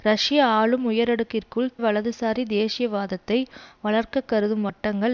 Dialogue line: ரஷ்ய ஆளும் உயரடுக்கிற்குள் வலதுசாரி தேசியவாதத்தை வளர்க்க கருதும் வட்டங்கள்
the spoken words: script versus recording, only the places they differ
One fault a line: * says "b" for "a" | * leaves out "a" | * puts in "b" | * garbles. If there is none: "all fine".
all fine